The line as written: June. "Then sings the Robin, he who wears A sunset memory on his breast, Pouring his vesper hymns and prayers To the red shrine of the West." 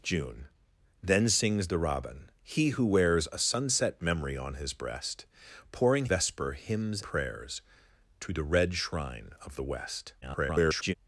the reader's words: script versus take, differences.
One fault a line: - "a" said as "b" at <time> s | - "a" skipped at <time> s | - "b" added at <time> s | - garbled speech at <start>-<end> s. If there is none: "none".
- "his" skipped at 6.0 s
- "and" skipped at 7.0 s
- garbled speech at 10.2-10.9 s